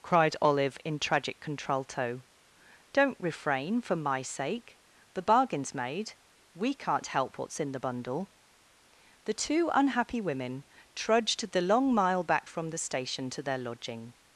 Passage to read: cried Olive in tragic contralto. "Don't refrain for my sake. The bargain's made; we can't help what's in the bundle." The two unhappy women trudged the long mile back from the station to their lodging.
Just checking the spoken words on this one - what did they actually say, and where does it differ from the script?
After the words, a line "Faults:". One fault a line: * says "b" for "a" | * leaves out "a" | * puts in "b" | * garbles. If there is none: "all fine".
cried Olive in tragic contralto. "Don't refrain for my sake. The bargain's made; we can't help what's in the bundle." The two unhappy women trudged the long mile back from the station to their lodging.
Faults:
all fine